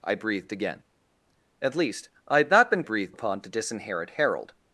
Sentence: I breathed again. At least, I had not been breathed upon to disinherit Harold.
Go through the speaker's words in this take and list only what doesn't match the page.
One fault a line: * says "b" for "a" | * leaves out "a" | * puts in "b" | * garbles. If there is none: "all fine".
all fine